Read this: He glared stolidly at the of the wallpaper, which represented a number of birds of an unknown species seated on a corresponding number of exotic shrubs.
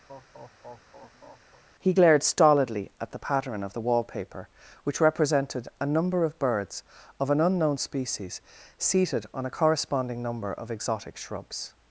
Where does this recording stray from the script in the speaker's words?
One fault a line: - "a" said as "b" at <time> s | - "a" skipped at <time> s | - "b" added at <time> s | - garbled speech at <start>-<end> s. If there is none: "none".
- "pattern" added at 3.2 s